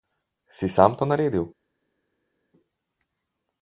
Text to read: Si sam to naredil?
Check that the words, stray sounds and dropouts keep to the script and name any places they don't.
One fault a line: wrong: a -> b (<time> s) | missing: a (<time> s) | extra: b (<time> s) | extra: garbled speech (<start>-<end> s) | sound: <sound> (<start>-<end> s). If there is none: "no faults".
no faults